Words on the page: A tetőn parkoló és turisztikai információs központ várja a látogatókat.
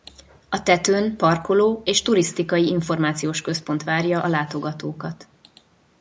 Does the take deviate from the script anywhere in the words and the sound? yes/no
no